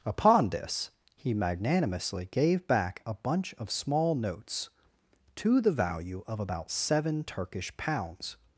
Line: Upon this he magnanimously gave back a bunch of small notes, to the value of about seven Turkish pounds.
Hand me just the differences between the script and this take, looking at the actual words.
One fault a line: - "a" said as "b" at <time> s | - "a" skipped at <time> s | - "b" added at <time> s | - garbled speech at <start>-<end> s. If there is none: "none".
none